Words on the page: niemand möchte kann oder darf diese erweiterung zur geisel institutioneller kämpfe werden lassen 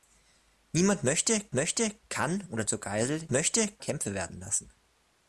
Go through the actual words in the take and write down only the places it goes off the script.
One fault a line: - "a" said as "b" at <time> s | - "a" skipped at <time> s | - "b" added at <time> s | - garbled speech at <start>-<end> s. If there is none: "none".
- "möchte" added at 1.5 s
- "darf diese erweiterung" skipped at 2.6 s
- "institutioneller" said as "möchte" at 3.3 s